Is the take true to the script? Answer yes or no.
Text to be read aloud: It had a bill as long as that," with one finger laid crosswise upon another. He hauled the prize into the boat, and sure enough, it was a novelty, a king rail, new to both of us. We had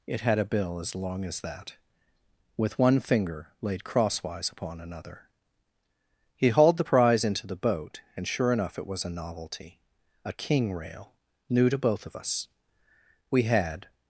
yes